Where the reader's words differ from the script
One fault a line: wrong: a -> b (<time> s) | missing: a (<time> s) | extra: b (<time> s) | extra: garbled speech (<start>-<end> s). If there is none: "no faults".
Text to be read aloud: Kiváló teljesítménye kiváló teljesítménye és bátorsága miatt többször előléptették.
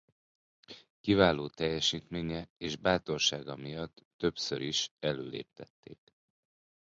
missing: kiváló teljesítménye (2.5 s)
extra: is (4.6 s)